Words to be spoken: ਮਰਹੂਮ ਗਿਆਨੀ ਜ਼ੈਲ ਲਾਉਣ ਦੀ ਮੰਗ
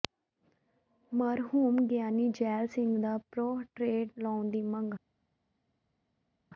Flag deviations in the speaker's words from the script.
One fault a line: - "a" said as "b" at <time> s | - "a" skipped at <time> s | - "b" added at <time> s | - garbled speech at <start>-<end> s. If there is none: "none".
- "ਸਿੰਘ ਦਾ ਪੋਰਟਰੇਟ" added at 2.7 s